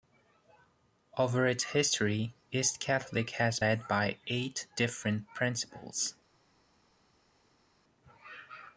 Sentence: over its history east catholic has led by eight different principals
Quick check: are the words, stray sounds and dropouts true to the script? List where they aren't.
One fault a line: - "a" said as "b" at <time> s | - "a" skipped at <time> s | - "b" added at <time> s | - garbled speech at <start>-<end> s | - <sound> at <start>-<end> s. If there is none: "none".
none